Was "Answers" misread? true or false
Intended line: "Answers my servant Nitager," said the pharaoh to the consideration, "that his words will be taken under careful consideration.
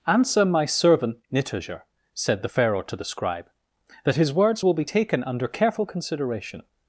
true